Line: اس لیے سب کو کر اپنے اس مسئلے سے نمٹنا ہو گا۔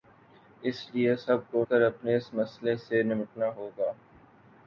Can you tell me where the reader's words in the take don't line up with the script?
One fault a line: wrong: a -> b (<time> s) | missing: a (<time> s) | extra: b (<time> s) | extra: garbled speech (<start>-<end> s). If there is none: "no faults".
no faults